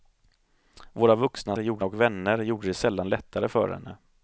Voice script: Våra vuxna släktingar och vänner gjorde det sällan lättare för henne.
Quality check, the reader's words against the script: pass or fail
fail